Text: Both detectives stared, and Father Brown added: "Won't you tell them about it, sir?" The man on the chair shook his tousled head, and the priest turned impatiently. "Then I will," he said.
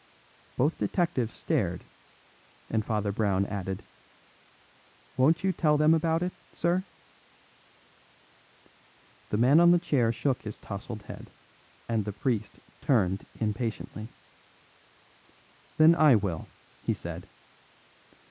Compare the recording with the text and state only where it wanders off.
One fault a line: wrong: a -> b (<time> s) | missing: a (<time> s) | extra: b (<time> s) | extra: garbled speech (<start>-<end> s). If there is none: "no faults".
no faults